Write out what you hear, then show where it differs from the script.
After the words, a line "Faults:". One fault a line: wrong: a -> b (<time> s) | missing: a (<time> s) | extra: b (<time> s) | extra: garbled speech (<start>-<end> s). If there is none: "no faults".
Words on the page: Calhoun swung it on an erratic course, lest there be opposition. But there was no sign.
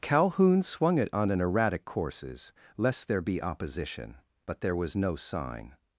Calhoun swung it on an erratic courses, lest there be opposition. But there was no sign.
Faults:
wrong: course -> courses (1.8 s)